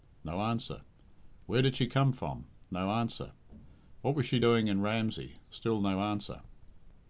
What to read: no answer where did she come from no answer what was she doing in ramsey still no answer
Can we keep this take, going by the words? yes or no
yes